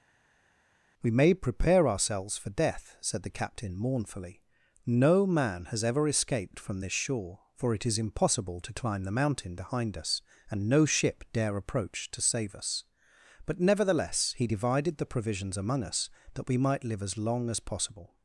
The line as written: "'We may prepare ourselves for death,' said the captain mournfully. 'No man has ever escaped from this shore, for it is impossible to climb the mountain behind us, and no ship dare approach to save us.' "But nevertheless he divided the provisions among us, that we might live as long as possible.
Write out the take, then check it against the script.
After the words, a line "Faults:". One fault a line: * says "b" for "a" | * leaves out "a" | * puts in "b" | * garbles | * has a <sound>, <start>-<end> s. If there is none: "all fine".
"'We may prepare ourselves for death,' said the captain mournfully. 'No man has ever escaped from this shore, for it is impossible to climb the mountain behind us, and no ship dare approach to save us.' "But nevertheless he divided the provisions among us, that we might live as long as possible.
Faults:
all fine